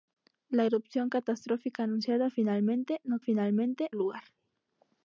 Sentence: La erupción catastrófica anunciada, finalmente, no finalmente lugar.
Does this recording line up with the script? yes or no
yes